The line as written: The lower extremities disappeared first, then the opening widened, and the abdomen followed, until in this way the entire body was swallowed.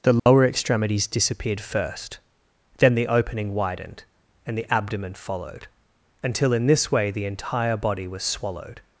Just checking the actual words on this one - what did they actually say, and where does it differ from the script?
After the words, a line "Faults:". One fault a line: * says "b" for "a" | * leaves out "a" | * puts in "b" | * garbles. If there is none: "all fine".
The lower extremities disappeared first, then the opening widened, and the abdomen followed, until in this way the entire body was swallowed.
Faults:
all fine